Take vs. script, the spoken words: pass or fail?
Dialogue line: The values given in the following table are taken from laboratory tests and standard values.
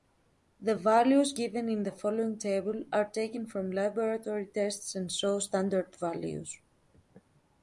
fail